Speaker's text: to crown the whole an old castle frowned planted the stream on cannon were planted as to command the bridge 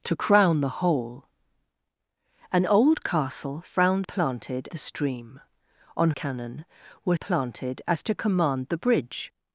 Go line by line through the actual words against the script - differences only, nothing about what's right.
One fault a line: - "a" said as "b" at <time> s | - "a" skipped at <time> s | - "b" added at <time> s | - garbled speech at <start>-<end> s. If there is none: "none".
none